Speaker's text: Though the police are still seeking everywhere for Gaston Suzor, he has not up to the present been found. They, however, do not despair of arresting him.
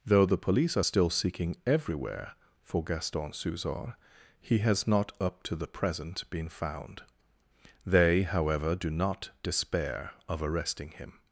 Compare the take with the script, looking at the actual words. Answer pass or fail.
pass